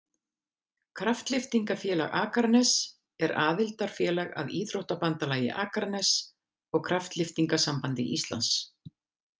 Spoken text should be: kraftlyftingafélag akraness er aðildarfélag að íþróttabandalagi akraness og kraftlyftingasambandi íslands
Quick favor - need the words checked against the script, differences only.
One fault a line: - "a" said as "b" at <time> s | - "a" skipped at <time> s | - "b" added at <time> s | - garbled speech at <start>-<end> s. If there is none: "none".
none